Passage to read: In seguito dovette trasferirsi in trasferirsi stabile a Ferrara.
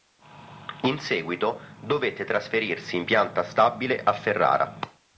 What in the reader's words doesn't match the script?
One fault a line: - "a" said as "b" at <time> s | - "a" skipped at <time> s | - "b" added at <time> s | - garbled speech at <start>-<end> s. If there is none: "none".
- "trasferirsi" said as "pianta" at 3.0 s